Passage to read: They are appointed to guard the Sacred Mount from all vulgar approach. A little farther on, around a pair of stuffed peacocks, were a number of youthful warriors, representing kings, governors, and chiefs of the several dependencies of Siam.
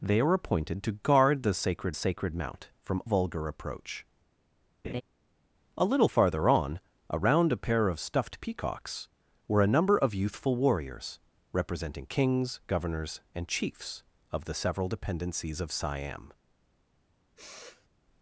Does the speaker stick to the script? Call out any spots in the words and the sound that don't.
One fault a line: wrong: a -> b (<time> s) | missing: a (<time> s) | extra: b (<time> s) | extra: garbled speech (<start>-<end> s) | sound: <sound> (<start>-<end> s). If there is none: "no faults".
extra: Sacred (1.9 s)
missing: all (3.0 s)
sound: laugh (4.8-5.0 s)
sound: sniff (17.4-17.9 s)